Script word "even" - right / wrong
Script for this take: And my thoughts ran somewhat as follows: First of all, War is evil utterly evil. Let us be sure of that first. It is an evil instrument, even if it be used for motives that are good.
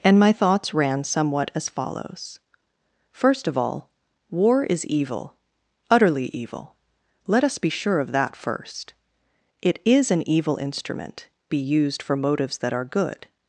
wrong